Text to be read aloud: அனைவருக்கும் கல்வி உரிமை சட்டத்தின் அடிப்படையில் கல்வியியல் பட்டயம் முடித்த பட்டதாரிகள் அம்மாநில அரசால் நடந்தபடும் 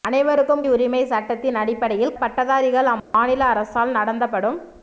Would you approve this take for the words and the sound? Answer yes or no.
no